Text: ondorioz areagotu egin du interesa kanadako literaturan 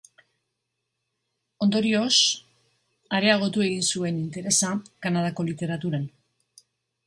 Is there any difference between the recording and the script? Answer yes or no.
yes